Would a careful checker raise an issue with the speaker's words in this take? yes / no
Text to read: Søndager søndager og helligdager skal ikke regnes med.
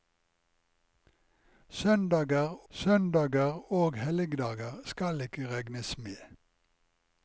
no